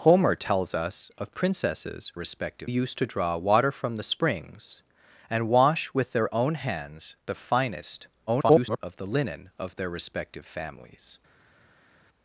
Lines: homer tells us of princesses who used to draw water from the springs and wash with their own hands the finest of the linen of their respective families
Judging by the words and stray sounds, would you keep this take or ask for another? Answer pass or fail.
fail